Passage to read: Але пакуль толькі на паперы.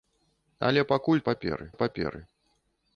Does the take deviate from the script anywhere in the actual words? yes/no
yes